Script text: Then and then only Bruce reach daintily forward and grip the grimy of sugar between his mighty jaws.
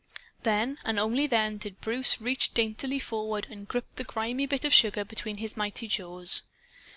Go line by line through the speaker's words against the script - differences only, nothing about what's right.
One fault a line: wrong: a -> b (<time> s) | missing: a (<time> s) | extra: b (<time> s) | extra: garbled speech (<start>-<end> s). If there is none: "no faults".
extra: did (1.3 s)
extra: bit (4.5 s)